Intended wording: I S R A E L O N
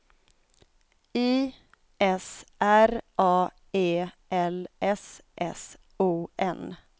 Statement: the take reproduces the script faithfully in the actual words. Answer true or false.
false